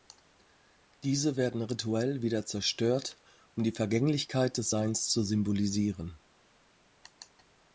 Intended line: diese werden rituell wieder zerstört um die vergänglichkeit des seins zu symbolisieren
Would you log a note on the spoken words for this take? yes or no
no